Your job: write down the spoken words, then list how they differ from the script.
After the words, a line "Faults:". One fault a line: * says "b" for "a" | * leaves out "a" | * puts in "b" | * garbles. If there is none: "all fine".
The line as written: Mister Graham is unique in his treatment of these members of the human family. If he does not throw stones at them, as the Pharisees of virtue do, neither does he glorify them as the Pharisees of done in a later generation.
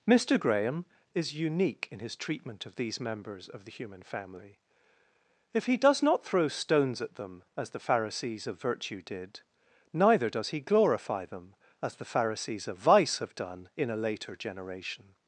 Mister Graham is unique in his treatment of these members of the human family. If he does not throw stones at them, as the Pharisees of virtue did, neither does he glorify them as the Pharisees of vice have done in a later generation.
Faults:
* says "did" for "do"
* puts in "vice have"